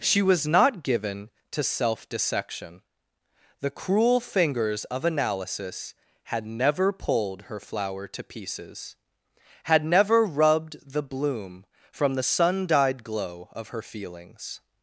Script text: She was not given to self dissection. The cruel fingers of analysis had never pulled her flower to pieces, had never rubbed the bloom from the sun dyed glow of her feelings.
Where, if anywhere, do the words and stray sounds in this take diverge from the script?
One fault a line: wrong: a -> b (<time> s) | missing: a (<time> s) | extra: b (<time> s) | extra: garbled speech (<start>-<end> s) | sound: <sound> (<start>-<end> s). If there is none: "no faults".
no faults